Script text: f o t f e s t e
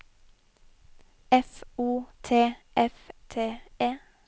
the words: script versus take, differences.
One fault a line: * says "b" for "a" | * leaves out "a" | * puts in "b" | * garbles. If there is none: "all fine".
* leaves out "e s"